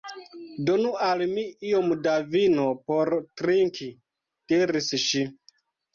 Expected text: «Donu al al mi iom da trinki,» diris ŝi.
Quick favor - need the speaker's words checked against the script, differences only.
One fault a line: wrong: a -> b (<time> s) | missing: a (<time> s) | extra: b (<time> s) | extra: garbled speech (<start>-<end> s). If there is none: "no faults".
missing: al (1.2 s)
extra: vino por (2.4 s)